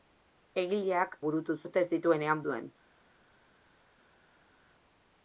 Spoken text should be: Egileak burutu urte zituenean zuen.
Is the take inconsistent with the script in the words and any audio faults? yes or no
no